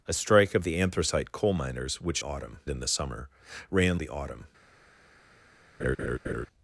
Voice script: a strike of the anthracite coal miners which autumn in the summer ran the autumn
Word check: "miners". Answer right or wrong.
right